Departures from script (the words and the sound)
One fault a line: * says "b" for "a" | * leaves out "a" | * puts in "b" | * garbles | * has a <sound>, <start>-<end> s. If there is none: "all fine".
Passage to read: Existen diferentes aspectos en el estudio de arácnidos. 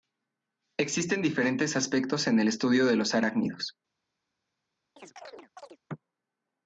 * puts in "los"
* has a chirp, 5.0-5.8 s